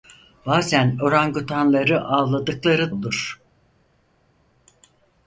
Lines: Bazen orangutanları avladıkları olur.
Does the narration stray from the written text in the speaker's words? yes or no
no